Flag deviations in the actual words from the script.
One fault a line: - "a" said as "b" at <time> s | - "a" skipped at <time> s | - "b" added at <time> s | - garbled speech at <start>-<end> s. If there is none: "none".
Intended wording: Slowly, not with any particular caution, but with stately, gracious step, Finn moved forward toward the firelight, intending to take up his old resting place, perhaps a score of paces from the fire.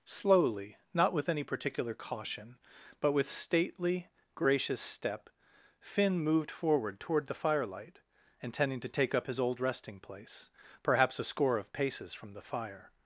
none